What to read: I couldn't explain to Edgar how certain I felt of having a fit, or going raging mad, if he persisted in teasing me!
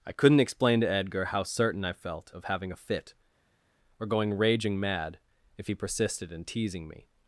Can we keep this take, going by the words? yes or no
yes